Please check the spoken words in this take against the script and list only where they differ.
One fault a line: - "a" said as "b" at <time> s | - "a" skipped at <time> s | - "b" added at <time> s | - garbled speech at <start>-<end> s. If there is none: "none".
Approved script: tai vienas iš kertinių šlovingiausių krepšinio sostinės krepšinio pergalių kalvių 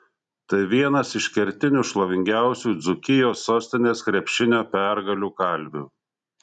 - "krepšinio" said as "dzūkijos" at 2.9 s